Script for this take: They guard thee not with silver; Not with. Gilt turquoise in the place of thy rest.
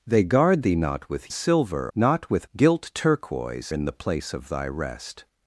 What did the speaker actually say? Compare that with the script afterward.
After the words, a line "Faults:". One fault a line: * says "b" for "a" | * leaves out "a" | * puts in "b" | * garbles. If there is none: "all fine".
They guard thee not with silver; Not with. Gilt turquoise in the place of thy rest.
Faults:
all fine